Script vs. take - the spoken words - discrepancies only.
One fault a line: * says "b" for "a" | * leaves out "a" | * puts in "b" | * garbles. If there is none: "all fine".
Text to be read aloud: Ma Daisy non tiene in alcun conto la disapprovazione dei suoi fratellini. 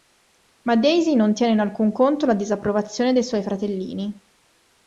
all fine